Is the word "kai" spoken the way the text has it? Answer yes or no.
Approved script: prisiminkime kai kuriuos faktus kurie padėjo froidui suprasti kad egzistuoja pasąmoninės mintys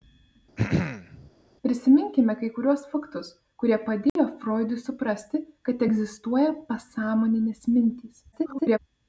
yes